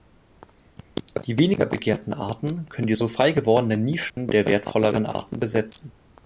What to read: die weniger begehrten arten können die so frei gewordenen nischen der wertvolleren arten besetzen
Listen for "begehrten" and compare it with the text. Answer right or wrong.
right